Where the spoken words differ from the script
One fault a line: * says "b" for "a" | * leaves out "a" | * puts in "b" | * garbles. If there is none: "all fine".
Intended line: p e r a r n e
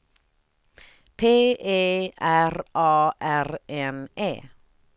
all fine